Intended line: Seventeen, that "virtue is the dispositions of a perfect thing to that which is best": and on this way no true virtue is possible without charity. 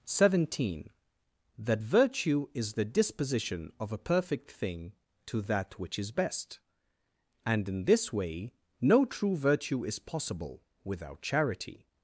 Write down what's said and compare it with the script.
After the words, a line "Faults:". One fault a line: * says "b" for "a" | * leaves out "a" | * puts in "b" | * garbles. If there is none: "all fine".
Seventeen, that "virtue is the disposition of a perfect thing to that which is best": and in this way no true virtue is possible without charity.
Faults:
* says "disposition" for "dispositions"
* says "in" for "on"